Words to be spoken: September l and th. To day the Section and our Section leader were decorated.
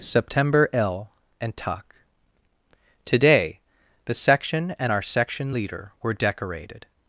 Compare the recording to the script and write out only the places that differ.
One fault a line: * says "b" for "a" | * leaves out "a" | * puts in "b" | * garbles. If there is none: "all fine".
* says "tuck today" for "th To day"